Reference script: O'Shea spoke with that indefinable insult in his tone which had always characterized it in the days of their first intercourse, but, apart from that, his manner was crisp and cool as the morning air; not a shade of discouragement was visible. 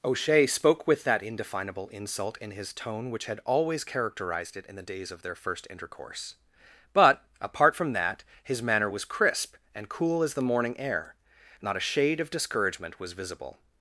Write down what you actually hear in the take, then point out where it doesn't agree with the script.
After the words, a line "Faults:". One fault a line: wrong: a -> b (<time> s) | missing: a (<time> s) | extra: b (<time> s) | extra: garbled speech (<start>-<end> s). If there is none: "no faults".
O'Shea spoke with that indefinable insult in his tone which had always characterized it in the days of their first intercourse, but, apart from that, his manner was crisp and cool as the morning air; not a shade of discouragement was visible.
Faults:
no faults